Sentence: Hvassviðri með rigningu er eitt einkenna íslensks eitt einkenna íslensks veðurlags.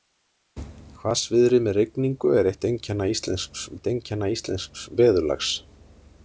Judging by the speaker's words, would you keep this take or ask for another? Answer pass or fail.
pass